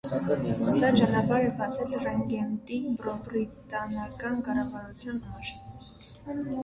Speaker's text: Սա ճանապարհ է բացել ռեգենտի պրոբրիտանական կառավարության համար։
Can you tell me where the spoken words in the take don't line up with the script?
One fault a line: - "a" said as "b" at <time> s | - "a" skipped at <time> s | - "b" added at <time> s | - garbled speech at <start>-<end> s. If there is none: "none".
none